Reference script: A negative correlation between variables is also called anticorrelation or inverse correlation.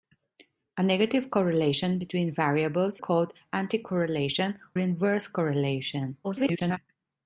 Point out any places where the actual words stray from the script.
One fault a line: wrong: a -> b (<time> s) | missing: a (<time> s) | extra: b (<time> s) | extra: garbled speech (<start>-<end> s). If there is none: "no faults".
missing: is also (3.0 s)
missing: or (4.6 s)
extra: garbled speech (6.2-6.8 s)